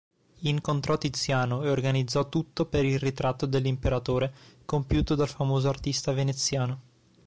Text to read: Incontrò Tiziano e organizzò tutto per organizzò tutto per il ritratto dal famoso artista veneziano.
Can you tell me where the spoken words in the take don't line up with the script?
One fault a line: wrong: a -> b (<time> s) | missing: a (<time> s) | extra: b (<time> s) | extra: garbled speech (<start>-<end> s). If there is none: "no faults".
wrong: organizzò tutto per il ritratto -> il ritratto dell'imperatore compiuto (2.9 s)